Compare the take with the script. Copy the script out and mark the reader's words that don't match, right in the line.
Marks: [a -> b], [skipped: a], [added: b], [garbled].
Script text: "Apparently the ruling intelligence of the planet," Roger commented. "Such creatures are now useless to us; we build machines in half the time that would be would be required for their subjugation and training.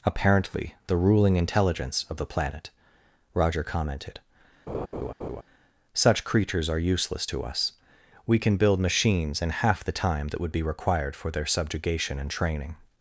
"Apparently the ruling intelligence of the planet," Roger commented. "Such creatures are [skipped: now] useless to us; we [added: can] build machines in half the time that would be [skipped: would be] required for their subjugation and training.